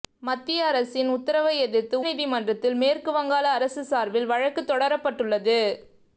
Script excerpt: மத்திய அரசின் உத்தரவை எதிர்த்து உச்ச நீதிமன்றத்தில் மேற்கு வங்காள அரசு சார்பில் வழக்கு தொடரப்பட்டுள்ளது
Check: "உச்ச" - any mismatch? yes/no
yes